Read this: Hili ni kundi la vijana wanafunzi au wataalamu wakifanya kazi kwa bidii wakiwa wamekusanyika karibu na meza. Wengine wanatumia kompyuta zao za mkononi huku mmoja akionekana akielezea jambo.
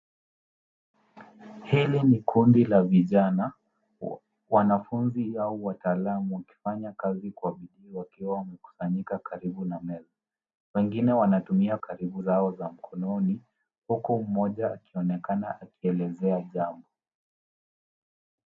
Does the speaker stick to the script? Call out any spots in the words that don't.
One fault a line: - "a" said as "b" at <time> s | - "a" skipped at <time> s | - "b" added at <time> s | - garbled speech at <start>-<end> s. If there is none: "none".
- "kompyuta" said as "karibu" at 11.8 s